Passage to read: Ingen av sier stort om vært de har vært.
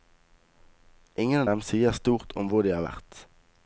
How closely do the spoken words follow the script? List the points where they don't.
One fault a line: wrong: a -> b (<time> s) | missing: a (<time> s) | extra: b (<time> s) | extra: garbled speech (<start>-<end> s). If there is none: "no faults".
extra: dem (1.5 s)
wrong: vært -> hvor (2.5 s)